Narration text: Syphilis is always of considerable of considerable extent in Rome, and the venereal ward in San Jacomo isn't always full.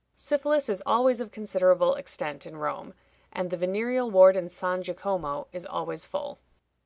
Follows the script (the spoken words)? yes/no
no